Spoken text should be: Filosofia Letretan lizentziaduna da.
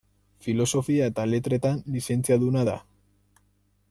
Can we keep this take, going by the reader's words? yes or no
no